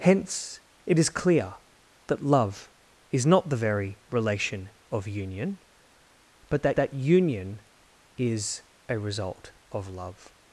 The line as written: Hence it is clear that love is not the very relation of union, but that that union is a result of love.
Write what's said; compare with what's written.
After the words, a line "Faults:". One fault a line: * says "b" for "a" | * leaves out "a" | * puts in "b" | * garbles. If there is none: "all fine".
Hence it is clear that love is not the very relation of union, but that that union is a result of love.
Faults:
all fine